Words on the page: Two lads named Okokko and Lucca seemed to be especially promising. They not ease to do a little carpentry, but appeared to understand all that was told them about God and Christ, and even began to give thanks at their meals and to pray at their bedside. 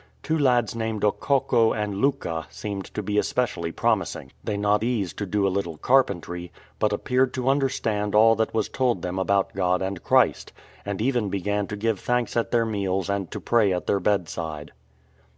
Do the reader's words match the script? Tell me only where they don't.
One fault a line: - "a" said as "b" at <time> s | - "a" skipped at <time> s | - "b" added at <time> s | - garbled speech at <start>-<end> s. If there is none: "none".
none